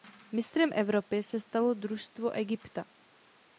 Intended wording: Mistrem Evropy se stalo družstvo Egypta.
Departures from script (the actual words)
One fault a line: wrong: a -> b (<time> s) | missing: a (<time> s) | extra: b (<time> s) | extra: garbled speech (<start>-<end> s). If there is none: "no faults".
no faults